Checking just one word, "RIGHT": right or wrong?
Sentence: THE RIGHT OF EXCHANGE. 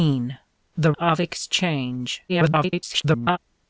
wrong